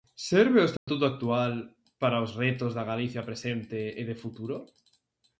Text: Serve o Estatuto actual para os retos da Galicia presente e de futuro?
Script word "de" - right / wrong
right